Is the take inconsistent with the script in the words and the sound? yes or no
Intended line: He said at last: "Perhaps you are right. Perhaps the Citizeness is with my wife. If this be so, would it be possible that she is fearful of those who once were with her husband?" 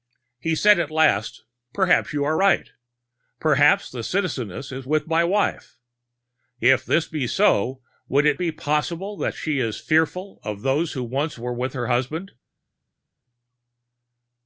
no